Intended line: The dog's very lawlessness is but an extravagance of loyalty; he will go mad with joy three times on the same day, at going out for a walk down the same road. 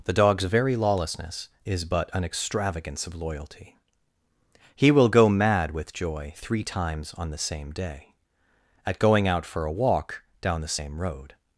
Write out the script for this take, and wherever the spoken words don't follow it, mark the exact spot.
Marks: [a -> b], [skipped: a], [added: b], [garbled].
The dog's very lawlessness is but an extravagance of loyalty; he will go mad with joy three times on the same day, at going out for a walk down the same road.